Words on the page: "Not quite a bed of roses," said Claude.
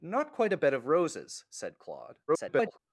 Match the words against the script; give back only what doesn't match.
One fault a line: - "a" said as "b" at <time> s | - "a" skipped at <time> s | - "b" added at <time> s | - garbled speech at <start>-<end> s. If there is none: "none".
- garbled speech at 2.3-2.8 s